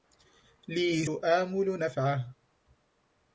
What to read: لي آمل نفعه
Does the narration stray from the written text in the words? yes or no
no